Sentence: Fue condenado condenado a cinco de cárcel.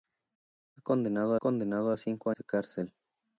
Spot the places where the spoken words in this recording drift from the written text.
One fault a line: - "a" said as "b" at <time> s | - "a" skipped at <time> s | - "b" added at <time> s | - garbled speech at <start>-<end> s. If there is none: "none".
none